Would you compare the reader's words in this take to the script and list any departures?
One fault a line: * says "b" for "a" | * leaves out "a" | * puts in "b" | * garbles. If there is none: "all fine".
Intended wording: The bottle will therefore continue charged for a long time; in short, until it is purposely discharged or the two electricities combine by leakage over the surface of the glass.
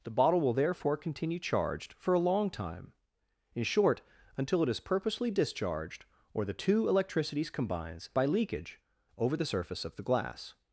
* says "combines" for "combine"